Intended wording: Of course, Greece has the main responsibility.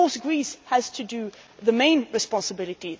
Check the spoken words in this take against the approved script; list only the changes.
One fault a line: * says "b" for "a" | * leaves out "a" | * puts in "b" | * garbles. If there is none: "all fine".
all fine